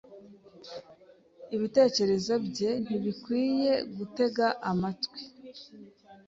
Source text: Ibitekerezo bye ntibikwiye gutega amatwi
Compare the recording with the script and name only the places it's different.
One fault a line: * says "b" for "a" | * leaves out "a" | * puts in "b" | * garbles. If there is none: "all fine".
all fine